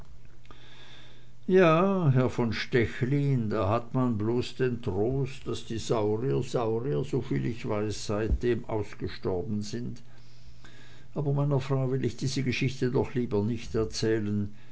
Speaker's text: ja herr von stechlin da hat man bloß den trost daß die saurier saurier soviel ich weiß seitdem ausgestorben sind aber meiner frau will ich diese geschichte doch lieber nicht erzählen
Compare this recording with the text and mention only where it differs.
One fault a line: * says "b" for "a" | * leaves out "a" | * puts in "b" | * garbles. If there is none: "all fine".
all fine